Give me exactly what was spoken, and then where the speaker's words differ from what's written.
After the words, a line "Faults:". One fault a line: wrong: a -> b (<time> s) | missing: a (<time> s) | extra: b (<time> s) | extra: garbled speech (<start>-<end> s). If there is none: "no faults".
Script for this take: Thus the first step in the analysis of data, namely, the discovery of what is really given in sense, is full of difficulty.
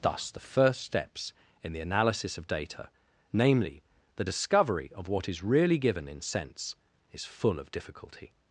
Thus the first steps in the analysis of data, namely, the discovery of what is really given in sense, is full of difficulty.
Faults:
wrong: step -> steps (0.8 s)